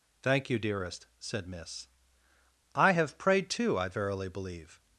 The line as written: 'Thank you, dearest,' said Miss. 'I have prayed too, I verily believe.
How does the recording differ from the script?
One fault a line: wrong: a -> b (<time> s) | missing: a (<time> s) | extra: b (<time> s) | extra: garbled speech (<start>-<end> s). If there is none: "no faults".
no faults